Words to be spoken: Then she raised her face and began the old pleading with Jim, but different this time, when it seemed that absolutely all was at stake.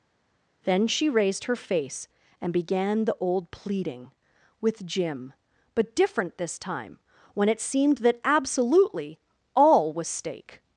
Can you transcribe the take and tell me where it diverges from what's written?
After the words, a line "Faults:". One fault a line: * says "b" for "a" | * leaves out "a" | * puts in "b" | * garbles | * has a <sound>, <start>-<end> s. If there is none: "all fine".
Then she raised her face and began the old pleading with Jim, but different this time, when it seemed that absolutely all was stake.
Faults:
* leaves out "at"